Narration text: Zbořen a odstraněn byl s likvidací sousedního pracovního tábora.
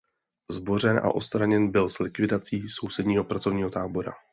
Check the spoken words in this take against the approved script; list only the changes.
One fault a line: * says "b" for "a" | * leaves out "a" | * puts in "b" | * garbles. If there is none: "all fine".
all fine